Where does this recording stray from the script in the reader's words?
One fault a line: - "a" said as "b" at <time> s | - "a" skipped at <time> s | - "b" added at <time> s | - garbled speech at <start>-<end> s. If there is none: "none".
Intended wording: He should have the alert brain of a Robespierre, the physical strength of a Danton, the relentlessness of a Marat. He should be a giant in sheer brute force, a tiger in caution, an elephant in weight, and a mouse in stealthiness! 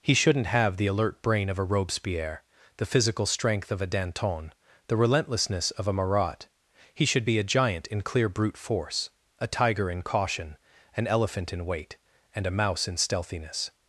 - "should" said as "shouldn't" at 0.1 s
- "sheer" said as "clear" at 8.0 s